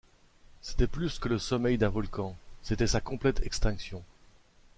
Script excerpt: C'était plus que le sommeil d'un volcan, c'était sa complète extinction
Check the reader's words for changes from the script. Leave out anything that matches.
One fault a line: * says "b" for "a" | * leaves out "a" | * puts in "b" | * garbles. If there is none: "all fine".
all fine